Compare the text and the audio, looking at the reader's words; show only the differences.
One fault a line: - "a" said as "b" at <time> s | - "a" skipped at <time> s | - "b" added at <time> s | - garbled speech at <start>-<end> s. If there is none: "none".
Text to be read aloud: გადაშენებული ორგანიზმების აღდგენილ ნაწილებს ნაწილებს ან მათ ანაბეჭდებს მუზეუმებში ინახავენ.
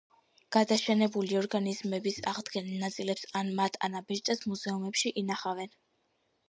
- "ნაწილებს" skipped at 3.3 s